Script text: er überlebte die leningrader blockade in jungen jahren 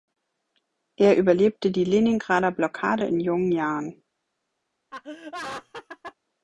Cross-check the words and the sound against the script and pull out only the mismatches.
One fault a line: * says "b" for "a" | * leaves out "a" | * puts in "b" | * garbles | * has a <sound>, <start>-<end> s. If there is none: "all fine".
* has a laugh, 4.9-6.2 s